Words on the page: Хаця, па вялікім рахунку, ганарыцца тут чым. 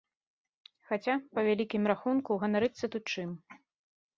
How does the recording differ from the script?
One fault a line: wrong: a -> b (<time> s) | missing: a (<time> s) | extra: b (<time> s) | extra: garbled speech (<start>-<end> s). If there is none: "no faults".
no faults